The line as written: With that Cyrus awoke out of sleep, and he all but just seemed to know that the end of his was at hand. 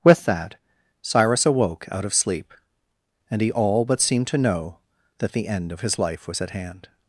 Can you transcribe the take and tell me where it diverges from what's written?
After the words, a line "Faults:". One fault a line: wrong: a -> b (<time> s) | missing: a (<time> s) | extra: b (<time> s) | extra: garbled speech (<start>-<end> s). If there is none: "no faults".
With that Cyrus awoke out of sleep, and he all but seemed to know that the end of his life was at hand.
Faults:
missing: just (4.0 s)
extra: life (6.0 s)